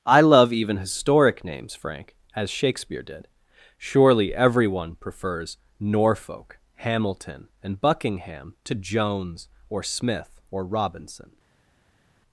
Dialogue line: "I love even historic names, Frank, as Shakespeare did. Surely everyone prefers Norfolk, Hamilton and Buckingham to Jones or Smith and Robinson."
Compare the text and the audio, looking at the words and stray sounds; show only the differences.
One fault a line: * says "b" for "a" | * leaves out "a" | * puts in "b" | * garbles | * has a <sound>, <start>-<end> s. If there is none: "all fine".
* says "or" for "and"